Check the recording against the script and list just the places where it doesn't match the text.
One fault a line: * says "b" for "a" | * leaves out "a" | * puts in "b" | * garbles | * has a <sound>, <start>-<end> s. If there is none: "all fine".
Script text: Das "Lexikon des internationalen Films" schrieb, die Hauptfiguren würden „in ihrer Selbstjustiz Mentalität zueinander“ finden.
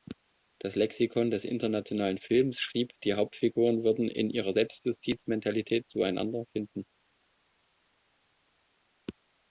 all fine